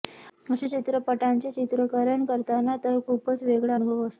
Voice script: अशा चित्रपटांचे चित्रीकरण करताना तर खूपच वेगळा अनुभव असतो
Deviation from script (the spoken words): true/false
false